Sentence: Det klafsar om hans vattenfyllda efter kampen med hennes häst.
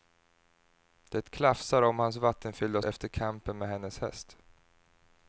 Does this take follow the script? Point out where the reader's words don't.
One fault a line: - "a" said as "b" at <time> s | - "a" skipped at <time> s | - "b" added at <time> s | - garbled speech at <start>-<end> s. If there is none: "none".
none